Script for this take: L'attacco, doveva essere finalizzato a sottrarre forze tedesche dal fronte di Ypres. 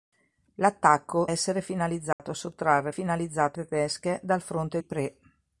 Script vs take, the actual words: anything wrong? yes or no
yes